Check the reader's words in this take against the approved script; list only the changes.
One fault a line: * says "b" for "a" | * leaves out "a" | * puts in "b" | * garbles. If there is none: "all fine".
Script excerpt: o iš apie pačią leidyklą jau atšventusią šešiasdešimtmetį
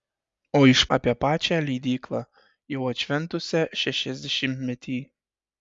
all fine